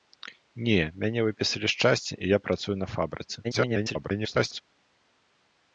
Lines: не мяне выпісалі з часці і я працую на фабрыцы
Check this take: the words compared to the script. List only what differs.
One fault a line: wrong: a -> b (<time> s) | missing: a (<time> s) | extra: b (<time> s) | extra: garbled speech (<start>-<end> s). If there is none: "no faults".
extra: garbled speech (3.4-4.6 s)